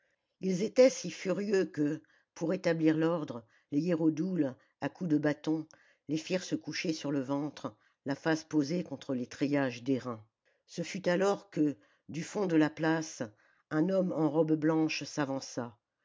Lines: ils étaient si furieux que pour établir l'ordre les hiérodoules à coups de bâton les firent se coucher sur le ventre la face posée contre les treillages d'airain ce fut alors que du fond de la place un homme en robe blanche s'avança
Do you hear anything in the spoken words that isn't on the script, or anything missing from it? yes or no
no